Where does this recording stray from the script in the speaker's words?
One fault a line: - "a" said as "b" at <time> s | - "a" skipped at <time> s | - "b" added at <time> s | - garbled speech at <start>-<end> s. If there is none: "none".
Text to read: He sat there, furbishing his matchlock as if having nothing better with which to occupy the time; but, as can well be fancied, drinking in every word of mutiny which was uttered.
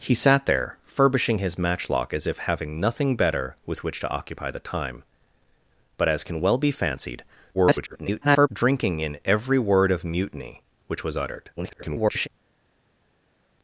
- garbled speech at 7.5-8.5 s
- garbled speech at 11.6-12.3 s